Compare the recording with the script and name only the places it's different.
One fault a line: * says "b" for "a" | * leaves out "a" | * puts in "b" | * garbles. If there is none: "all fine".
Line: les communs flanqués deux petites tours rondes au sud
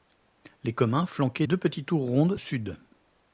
all fine